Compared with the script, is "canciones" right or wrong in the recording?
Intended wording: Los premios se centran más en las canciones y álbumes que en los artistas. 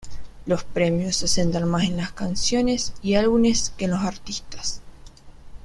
right